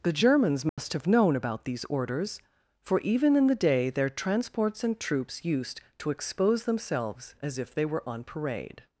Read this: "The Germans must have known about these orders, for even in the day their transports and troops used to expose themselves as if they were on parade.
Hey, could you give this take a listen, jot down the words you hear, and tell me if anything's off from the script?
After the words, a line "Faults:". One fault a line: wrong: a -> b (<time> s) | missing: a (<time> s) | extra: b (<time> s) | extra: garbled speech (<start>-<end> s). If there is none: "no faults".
"The Germans must have known about these orders, for even in the day their transports and troops used to expose themselves as if they were on parade.
Faults:
no faults